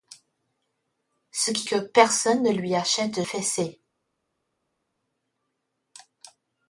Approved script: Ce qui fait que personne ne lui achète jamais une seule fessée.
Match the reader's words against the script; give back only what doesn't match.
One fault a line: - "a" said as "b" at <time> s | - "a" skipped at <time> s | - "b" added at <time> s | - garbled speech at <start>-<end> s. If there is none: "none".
- "fait" skipped at 1.7 s
- "jamais une seule" skipped at 3.2 s